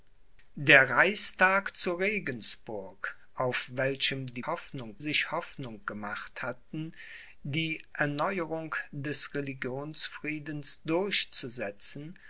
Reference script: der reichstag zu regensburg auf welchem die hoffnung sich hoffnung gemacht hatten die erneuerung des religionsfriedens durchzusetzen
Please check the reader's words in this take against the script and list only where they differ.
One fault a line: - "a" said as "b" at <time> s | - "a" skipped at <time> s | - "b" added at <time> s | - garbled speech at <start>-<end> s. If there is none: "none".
none